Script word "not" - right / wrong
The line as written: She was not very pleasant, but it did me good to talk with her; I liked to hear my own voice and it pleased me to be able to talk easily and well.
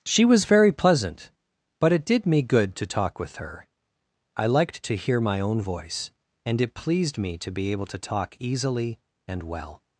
wrong